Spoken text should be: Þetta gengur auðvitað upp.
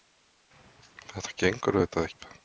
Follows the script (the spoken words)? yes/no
yes